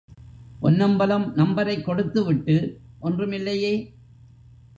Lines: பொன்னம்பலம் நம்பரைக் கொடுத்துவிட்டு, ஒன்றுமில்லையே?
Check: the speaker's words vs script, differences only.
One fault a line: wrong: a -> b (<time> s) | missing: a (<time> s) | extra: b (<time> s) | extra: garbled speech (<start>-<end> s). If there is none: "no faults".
no faults